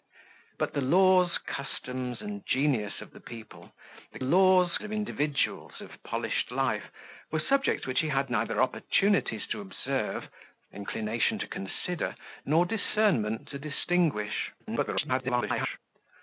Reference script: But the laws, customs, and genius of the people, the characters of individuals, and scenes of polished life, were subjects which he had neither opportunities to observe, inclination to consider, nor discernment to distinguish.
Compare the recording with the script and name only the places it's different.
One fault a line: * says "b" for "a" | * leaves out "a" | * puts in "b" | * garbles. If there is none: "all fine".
* says "laws" for "characters"
* leaves out "and scenes"
* garbles